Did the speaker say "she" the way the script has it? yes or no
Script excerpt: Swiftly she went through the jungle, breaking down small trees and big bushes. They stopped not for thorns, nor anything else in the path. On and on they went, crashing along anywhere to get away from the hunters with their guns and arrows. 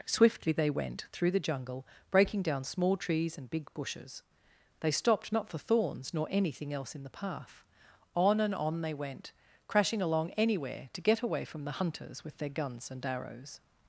no